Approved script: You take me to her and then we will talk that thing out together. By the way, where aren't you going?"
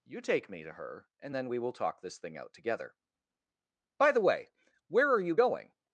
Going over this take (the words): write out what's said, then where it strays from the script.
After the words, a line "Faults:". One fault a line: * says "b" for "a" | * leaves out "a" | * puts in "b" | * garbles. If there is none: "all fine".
You take me to her and then we will talk this thing out together. By the way, where are you going?"
Faults:
* says "this" for "that"
* says "are" for "aren't"